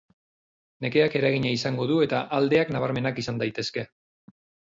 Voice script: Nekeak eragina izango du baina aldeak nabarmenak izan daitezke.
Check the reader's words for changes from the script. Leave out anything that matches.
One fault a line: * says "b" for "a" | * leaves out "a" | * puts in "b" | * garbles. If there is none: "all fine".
* says "eta" for "baina"